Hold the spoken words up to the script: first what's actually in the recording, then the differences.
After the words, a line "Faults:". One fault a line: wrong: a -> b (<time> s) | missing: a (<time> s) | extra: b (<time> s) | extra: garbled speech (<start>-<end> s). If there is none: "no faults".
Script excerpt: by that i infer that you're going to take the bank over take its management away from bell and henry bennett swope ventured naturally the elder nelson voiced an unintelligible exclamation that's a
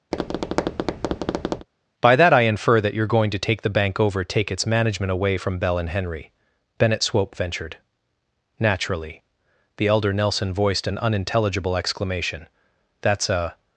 by that i infer that you're going to take the bank over take its management away from bell and henry bennett swope ventured naturally the elder nelson voiced an unintelligible exclamation that's a
Faults:
no faults